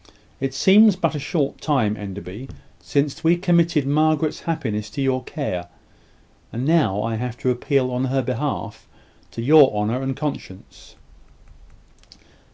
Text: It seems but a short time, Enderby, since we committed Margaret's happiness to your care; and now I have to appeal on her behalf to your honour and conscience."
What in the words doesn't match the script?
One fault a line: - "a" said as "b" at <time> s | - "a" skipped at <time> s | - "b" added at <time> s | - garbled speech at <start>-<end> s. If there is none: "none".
none